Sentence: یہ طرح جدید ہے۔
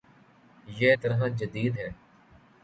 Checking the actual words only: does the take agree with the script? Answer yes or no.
yes